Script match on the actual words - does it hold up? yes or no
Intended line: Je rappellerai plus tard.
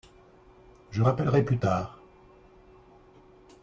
yes